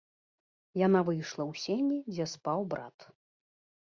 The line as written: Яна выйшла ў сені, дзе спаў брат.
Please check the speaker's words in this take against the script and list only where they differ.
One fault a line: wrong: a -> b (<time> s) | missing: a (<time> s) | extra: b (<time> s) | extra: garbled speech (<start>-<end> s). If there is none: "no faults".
no faults